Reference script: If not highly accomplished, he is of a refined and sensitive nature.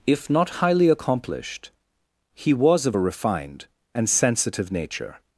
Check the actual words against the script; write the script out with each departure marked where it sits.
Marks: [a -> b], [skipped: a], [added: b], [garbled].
If not highly accomplished, he [is -> was] of a refined and sensitive nature.